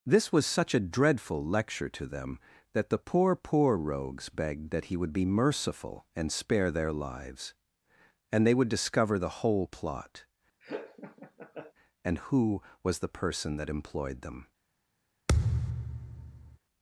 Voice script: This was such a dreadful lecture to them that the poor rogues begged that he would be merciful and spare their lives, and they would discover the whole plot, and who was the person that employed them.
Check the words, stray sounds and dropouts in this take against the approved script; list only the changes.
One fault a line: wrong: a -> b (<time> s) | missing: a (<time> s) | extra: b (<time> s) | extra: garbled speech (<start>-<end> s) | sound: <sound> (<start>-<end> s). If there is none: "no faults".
extra: poor (3.4 s)
sound: laugh (10.6-11.7 s)
sound: thud (15.3-16.6 s)